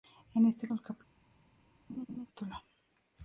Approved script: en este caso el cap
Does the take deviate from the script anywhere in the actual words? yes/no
yes